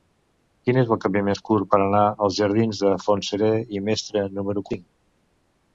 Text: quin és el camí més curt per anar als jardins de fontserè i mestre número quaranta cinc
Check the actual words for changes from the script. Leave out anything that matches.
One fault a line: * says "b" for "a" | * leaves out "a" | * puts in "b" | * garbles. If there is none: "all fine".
* leaves out "quaranta"